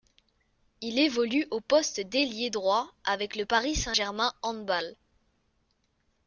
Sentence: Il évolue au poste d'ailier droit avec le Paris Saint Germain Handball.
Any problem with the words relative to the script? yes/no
no